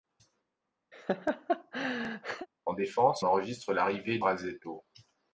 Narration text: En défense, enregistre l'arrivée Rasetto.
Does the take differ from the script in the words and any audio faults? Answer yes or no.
yes